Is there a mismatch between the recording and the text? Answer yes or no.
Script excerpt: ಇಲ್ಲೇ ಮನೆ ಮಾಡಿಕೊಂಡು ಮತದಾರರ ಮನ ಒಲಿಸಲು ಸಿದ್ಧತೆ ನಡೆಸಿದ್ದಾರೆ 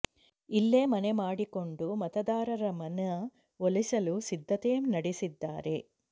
no